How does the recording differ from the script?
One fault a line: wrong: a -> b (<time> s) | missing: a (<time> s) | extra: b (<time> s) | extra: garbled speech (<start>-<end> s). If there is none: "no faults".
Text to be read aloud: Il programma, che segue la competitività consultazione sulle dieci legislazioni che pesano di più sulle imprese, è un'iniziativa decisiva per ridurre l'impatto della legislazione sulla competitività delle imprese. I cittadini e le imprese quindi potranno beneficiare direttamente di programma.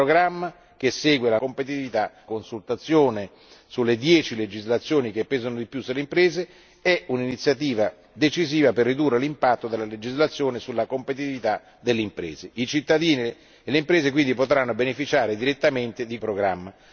no faults